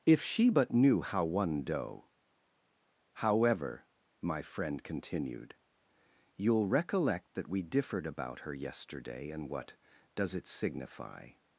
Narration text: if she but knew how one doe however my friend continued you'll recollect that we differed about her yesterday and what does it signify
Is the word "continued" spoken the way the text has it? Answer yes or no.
yes